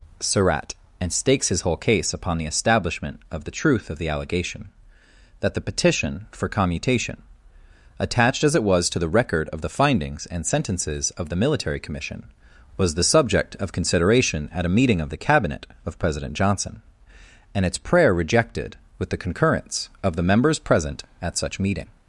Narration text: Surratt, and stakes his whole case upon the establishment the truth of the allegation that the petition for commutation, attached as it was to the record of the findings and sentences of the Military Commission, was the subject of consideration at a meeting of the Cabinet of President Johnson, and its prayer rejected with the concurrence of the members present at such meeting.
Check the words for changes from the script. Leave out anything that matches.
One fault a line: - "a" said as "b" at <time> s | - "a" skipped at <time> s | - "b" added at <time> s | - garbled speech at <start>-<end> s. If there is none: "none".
- "of" added at 3.3 s